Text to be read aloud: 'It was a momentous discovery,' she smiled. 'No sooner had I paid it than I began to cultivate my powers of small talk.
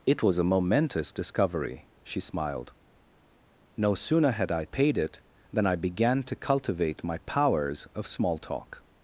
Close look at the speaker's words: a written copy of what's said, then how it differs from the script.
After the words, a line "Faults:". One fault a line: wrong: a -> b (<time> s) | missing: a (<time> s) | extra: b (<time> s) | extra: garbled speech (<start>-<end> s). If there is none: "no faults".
'It was a momentous discovery,' she smiled. 'No sooner had I paid it than I began to cultivate my powers of small talk.
Faults:
no faults